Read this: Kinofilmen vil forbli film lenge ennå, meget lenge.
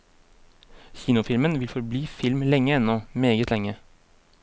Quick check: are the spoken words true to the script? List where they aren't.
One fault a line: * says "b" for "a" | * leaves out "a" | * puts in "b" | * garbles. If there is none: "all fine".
all fine